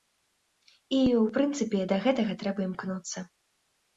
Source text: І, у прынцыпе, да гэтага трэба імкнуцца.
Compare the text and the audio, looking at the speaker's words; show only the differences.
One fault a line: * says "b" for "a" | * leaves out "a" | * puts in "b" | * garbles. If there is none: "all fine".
all fine